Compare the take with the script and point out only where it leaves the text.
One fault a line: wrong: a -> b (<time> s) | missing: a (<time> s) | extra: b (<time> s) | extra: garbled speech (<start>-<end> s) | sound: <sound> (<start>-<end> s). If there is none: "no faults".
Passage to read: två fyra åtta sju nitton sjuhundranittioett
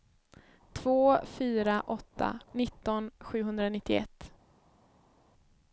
missing: sju (2.4 s)